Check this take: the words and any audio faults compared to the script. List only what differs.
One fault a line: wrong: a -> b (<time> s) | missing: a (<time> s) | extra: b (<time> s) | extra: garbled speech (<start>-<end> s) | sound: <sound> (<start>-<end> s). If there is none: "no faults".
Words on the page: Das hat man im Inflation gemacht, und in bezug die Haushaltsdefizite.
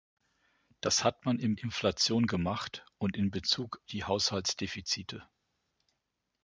no faults